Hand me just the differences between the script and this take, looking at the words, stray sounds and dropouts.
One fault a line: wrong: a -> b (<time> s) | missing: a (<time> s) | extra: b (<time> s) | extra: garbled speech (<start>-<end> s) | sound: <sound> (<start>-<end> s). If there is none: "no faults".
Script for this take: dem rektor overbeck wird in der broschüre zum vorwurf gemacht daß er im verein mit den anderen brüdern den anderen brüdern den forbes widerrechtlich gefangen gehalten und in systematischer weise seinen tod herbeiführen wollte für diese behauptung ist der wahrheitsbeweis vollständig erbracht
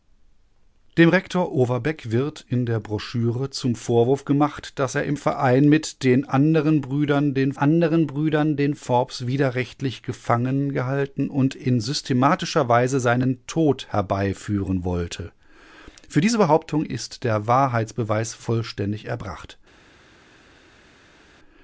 no faults